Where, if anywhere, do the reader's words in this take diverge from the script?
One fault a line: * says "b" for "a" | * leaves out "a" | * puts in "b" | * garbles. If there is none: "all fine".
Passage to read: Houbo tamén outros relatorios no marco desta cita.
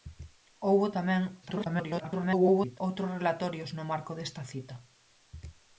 * garbles